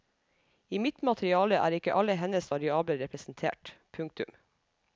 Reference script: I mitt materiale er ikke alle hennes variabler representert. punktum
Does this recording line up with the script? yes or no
yes